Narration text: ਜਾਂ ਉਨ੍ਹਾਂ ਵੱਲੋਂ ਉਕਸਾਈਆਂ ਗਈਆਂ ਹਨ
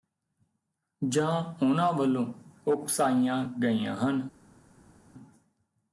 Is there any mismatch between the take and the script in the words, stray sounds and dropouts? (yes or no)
no